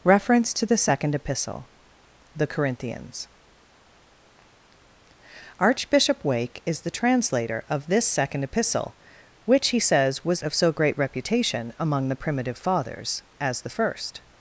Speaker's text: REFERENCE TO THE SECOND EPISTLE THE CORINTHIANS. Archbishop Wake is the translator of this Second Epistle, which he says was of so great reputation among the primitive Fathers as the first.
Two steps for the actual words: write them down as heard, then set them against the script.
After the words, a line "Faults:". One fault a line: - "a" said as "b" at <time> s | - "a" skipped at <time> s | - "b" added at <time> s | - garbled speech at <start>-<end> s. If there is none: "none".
REFERENCE TO THE SECOND EPISTLE THE CORINTHIANS. Archbishop Wake is the translator of this Second Epistle, which he says was of so great reputation among the primitive Fathers as the first.
Faults:
none